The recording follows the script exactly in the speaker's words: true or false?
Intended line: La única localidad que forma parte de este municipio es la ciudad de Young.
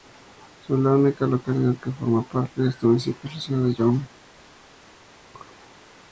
true